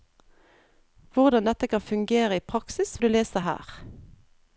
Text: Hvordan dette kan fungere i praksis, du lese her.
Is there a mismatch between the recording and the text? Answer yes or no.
no